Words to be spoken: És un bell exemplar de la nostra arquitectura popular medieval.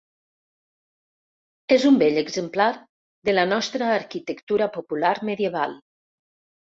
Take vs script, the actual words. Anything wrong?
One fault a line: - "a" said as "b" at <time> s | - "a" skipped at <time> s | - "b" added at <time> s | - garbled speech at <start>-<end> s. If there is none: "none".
none